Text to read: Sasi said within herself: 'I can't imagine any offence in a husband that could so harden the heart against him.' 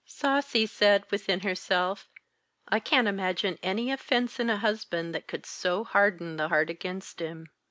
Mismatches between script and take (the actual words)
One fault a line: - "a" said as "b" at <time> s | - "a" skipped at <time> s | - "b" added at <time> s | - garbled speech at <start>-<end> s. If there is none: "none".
none